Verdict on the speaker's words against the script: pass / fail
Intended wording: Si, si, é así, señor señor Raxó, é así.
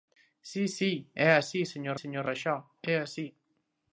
pass